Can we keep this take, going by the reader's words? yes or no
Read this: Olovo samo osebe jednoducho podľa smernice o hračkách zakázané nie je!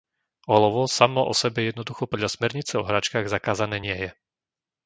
yes